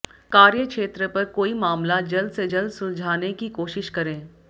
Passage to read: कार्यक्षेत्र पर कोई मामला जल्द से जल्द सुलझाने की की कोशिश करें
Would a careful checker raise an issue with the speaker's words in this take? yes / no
yes